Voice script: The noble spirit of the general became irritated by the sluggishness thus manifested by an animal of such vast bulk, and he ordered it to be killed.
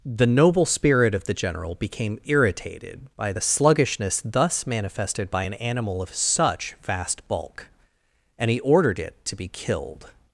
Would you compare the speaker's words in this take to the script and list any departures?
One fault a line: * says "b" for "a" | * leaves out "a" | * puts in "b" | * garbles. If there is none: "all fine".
all fine